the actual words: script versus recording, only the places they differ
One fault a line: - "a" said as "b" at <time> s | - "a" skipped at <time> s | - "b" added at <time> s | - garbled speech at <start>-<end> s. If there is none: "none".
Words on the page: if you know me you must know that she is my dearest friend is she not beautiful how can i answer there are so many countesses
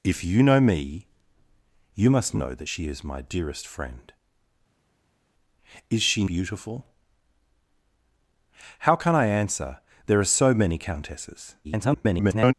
- "not" skipped at 6.2 s
- garbled speech at 11.6-12.5 s